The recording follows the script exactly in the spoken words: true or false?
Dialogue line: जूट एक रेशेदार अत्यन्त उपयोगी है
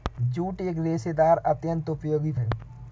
true